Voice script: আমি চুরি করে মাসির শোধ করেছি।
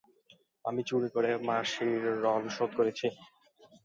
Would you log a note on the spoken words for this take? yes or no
yes